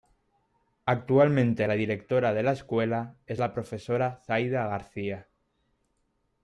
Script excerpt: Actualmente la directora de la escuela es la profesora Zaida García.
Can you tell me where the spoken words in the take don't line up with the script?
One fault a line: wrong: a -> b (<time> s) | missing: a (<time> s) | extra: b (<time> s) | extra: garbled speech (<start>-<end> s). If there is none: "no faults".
no faults